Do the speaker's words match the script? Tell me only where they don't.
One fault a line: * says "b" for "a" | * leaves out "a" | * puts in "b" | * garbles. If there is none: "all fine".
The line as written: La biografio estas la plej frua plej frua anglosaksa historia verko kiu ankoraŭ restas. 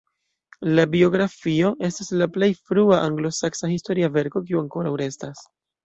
* leaves out "plej frua"